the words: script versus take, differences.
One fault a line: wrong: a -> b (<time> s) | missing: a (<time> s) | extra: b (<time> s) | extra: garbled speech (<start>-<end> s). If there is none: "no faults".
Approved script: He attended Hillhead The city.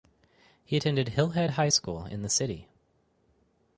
extra: High School in (1.5 s)